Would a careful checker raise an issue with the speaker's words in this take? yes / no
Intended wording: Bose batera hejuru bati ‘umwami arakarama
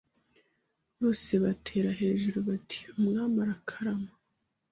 no